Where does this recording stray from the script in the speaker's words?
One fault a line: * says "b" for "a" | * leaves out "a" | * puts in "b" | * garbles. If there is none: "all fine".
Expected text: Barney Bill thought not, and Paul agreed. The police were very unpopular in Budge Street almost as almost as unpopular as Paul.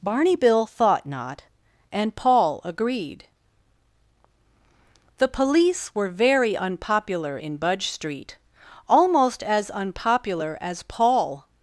* leaves out "almost as"